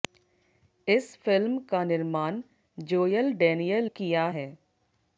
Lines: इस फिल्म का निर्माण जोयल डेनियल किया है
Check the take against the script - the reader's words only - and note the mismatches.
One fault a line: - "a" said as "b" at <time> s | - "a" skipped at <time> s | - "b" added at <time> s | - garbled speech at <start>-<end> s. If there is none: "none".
none